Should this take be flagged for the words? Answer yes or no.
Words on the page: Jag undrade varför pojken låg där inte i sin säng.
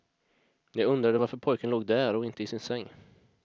yes